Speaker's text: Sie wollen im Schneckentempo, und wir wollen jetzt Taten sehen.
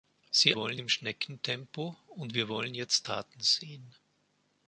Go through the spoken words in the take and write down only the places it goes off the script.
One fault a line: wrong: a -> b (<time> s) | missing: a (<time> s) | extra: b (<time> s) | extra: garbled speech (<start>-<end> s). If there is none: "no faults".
no faults